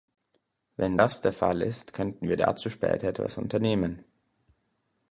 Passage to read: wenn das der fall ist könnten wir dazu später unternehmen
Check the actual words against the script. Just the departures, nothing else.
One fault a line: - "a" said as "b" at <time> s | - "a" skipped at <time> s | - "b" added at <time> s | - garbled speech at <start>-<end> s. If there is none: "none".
- "etwas" added at 3.1 s